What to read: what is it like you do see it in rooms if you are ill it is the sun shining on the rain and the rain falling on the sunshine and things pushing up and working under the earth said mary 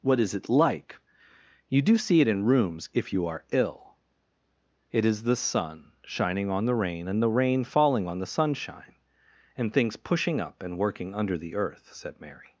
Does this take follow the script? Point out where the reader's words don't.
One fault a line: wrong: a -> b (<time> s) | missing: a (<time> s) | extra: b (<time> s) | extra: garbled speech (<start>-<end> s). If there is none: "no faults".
no faults